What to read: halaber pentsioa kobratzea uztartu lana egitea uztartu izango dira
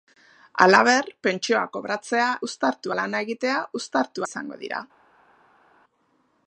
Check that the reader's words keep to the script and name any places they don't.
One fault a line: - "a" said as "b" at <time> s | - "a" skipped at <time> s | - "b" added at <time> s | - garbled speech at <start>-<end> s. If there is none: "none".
none